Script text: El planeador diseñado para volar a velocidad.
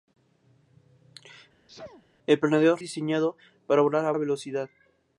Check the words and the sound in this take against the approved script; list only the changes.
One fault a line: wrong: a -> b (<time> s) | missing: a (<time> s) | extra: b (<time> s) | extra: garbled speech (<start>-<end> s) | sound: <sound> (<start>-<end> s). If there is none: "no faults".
sound: sneeze (1.7-2.0 s)